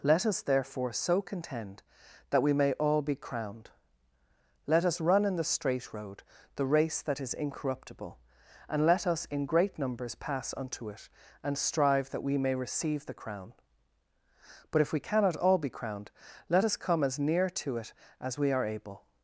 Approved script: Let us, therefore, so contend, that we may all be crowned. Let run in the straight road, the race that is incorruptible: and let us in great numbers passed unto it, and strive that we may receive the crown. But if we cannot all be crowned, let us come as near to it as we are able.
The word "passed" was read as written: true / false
false